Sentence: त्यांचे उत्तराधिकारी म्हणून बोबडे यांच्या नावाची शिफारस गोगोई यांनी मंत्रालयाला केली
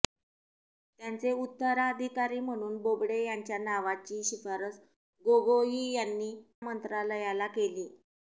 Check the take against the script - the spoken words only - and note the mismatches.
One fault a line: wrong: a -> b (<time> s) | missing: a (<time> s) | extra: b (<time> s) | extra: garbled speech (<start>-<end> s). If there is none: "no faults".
no faults